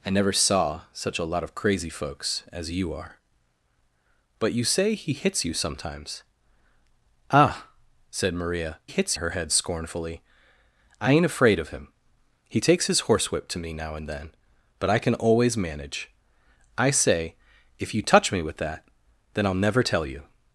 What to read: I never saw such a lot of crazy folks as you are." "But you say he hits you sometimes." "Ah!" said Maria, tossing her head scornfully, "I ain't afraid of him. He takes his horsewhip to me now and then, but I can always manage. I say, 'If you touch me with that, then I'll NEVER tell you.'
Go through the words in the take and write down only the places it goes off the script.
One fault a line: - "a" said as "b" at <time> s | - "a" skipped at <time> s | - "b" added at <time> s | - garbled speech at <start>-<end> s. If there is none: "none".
- "tossing" said as "hits" at 8.9 s